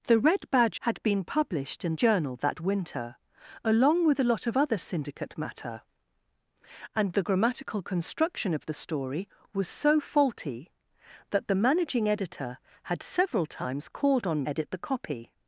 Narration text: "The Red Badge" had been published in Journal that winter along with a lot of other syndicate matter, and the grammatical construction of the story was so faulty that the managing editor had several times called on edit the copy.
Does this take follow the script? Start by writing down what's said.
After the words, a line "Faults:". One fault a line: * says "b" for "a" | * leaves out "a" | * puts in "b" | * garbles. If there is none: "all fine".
"The Red Badge" had been published in Journal that winter along with a lot of other syndicate matter, and the grammatical construction of the story was so faulty that the managing editor had several times called on edit the copy.
Faults:
all fine